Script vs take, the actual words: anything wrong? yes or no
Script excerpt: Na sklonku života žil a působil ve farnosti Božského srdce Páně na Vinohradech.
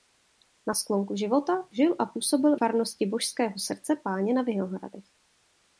yes